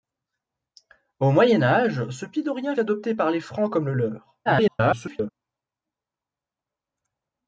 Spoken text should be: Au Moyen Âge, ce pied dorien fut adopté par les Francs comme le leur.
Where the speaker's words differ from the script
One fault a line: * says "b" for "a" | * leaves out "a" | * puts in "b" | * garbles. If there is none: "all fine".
* leaves out "fut"
* garbles